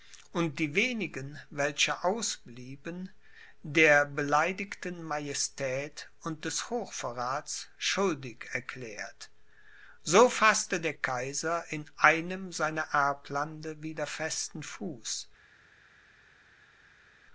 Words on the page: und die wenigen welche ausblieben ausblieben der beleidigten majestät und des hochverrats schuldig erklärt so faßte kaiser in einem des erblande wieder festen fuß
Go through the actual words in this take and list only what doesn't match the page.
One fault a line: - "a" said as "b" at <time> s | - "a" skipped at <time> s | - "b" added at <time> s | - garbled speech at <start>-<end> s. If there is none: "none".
- "ausblieben" skipped at 3.1 s
- "der" added at 10.8 s
- "des" said as "seiner" at 12.5 s